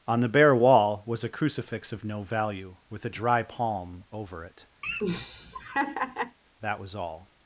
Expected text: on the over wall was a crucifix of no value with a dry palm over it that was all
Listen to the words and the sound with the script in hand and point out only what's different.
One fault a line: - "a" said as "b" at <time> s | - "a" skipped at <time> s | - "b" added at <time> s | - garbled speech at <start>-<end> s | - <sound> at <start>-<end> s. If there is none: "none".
- "over" said as "bare" at 0.3 s
- laugh at 4.8-6.4 s